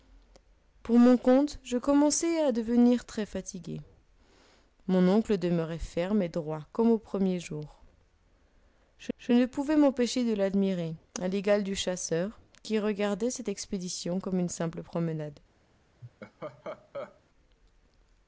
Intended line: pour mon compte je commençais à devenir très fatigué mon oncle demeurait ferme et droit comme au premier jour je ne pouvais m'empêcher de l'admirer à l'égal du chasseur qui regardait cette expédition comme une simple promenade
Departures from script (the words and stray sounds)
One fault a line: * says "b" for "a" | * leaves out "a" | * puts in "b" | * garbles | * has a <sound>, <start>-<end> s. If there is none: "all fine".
* puts in "je"
* has a laugh, 16.0-17.2 s